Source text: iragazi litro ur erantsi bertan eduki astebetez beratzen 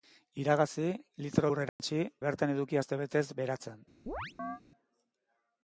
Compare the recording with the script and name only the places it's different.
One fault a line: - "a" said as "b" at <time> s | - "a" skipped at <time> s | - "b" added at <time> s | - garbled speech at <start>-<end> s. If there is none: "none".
none